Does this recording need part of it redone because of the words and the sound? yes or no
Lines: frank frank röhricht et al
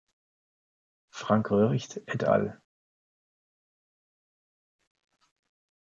yes